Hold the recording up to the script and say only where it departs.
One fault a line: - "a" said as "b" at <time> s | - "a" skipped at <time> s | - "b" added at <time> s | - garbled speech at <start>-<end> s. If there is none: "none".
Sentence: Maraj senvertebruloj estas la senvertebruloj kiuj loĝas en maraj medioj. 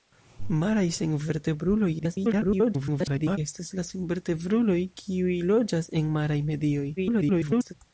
- garbled speech at 2.0-3.4 s
- garbled speech at 7.0-7.7 s